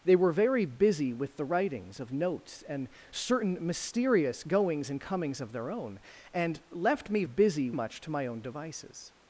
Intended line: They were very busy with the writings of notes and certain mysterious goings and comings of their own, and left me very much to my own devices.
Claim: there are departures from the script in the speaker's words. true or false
true